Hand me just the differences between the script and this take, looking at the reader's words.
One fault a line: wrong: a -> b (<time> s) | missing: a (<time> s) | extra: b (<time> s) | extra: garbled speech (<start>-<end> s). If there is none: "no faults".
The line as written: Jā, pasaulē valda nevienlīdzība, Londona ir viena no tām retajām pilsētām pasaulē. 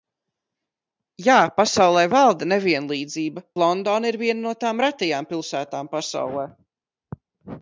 no faults